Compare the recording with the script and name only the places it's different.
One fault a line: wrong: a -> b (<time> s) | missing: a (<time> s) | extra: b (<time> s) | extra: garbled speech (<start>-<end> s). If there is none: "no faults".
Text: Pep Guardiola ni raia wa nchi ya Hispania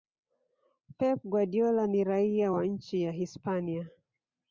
no faults